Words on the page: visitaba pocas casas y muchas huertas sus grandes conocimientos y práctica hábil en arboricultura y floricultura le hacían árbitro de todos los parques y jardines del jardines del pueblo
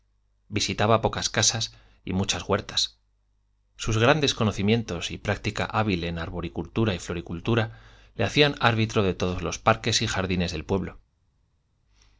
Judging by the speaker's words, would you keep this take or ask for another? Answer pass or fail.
fail